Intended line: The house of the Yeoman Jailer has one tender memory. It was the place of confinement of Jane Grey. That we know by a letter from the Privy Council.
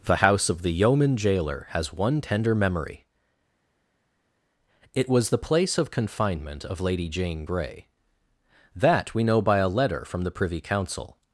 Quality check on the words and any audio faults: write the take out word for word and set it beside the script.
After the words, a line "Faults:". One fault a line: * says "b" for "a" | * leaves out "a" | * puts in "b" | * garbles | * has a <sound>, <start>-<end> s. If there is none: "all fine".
The house of the Yeoman Jailer has one tender memory. It was the place of confinement of Lady Jane Grey. That we know by a letter from the Privy Council.
Faults:
* puts in "Lady"